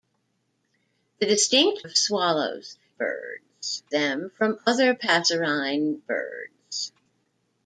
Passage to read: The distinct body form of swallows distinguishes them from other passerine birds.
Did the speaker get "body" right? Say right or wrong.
wrong